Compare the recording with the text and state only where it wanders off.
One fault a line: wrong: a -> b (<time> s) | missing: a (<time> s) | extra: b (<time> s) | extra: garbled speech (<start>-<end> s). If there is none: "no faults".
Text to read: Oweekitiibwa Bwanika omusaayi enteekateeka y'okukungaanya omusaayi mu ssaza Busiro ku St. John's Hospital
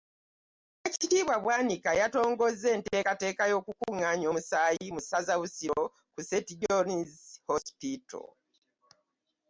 wrong: omusaayi -> yatongozza (2.0 s)